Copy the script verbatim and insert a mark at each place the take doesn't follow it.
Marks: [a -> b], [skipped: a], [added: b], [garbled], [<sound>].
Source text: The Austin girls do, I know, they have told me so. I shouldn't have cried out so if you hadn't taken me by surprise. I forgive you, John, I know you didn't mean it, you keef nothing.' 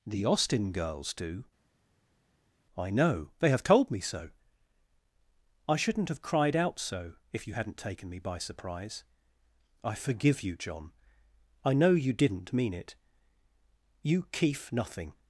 The Austin girls do, I know, they have told me so. I shouldn't have cried out so if you hadn't taken me by surprise. I forgive you, John, I know you didn't mean it, you keef nothing.'